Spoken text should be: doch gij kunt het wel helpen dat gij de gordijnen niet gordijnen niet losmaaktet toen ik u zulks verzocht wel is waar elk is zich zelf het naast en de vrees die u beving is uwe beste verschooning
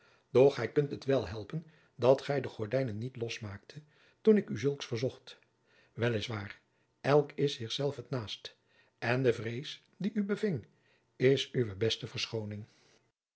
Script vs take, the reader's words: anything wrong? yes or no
yes